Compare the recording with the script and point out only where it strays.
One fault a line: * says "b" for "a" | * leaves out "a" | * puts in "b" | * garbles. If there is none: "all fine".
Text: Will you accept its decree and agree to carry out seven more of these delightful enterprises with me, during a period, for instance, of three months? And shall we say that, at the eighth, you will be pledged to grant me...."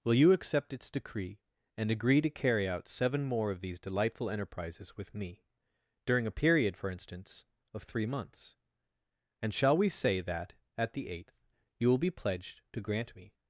all fine